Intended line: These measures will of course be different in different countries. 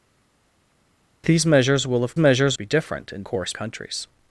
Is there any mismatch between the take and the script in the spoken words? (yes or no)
yes